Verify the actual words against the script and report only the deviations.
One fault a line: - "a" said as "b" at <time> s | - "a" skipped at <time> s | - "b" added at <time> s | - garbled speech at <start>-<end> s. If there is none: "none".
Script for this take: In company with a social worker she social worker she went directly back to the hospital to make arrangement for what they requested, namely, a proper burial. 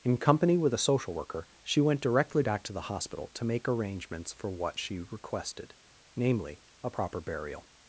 - "social worker she" skipped at 1.8 s
- "arrangement" said as "arrangements" at 3.7 s
- "they" said as "she" at 4.8 s